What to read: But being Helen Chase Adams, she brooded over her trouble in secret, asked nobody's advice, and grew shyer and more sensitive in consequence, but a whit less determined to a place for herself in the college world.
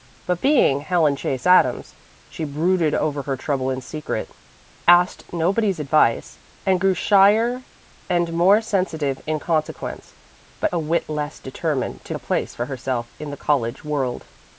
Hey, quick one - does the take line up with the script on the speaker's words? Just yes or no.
yes